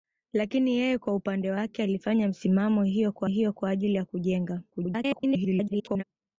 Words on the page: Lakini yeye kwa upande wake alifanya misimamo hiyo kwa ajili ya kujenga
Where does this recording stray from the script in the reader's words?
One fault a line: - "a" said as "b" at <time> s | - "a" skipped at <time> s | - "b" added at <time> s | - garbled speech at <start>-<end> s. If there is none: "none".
- "hiyo kwa" added at 3.2 s
- garbled speech at 4.7-6.0 s